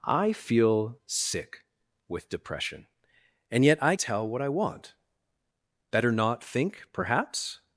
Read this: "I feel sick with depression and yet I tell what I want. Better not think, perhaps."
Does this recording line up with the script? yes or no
yes